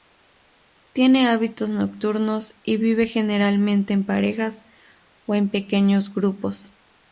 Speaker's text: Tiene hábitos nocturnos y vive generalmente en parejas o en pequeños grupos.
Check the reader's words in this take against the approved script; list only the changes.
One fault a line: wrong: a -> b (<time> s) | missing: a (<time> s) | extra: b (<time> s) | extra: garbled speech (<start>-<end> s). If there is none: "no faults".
no faults